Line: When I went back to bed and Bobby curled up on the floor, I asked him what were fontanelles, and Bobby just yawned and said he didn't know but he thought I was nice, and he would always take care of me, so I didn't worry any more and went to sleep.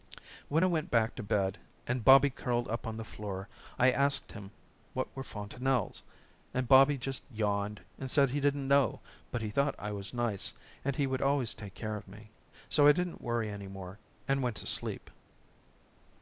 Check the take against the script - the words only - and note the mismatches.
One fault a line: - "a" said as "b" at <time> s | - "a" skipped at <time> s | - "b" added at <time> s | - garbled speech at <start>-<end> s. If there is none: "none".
none